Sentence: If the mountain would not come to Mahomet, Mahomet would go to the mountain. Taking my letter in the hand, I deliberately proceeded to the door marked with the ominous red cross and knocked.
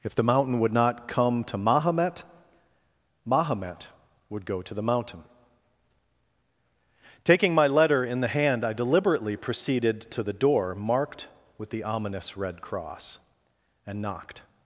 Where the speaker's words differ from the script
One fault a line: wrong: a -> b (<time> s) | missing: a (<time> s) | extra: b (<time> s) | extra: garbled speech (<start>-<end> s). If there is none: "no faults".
no faults